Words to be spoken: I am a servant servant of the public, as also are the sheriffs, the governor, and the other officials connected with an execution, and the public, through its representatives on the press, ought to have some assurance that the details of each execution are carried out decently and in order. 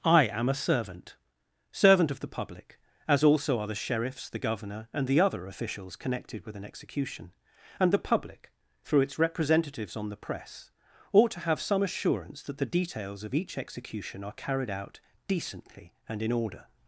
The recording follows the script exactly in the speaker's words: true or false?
true